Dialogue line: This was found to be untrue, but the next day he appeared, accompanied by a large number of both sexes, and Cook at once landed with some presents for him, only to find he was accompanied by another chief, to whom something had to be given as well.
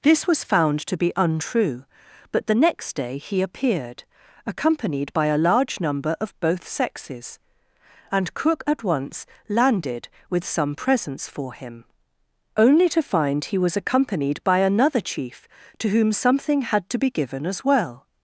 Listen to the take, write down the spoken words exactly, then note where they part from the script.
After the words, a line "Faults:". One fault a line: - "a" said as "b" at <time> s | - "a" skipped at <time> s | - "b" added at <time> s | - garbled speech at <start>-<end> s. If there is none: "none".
This was found to be untrue, but the next day he appeared, accompanied by a large number of both sexes, and Cook at once landed with some presents for him, only to find he was accompanied by another chief, to whom something had to be given as well.
Faults:
none